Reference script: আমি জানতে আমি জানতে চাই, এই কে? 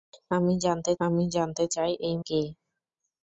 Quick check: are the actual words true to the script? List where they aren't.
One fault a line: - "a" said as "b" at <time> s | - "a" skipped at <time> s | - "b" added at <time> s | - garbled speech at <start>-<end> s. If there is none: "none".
none